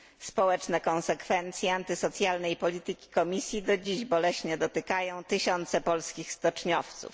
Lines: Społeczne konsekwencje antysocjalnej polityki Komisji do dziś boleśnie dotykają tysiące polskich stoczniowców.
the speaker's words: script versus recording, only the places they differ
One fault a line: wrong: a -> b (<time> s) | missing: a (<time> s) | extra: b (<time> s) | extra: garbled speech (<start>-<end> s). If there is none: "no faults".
no faults